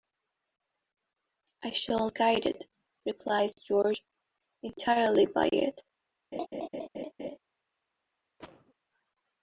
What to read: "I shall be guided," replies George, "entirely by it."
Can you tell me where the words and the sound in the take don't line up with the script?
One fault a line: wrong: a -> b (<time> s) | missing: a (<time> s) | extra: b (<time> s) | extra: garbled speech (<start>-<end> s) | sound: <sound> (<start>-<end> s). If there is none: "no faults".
missing: be (2.1 s)
sound: laugh (6.3-7.4 s)
sound: cough (8.4-8.7 s)